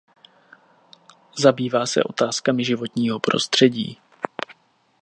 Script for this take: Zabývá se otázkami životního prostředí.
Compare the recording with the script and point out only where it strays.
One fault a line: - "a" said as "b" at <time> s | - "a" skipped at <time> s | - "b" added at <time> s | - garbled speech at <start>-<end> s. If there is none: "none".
none